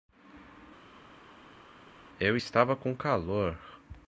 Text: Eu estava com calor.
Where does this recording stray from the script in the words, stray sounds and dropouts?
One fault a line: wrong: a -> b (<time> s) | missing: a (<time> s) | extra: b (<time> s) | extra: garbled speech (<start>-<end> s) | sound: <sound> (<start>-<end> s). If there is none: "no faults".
no faults